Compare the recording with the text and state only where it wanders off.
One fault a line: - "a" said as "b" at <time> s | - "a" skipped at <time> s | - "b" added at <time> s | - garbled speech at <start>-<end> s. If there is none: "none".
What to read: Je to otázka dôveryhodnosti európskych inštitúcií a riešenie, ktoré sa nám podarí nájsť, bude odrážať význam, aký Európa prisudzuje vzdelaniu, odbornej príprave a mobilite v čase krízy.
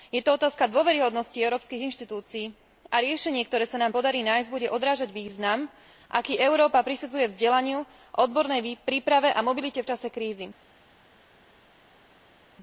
none